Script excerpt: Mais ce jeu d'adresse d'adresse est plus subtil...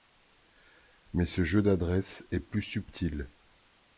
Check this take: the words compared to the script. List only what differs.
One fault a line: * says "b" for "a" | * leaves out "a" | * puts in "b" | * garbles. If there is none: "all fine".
* leaves out "d'adresse"